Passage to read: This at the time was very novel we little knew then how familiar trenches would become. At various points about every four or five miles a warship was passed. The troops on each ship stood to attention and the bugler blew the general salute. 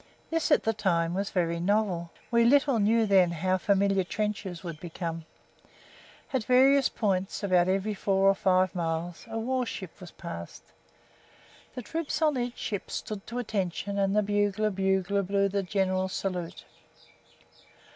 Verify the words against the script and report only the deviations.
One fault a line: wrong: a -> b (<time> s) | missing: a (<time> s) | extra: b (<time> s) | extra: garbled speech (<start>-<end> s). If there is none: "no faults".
extra: bugler (14.7 s)